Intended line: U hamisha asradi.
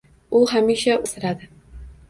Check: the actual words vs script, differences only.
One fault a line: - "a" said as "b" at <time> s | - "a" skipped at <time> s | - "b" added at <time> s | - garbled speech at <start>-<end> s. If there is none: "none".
none